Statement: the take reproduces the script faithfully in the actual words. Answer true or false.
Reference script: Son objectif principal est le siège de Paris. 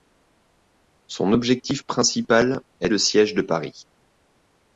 true